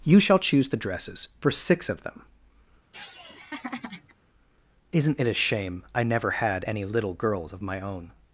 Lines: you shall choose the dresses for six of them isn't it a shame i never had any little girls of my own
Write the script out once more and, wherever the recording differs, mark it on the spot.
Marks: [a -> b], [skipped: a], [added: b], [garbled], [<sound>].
you shall choose the dresses for six of them [laugh] isn't it a shame i never had any little girls of my own